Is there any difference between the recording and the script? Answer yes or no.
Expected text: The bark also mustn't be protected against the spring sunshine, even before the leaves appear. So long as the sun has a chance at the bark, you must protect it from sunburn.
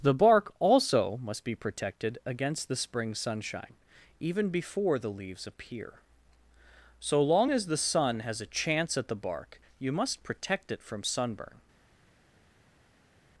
yes